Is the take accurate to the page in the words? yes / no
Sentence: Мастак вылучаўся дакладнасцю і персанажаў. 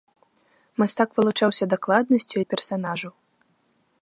yes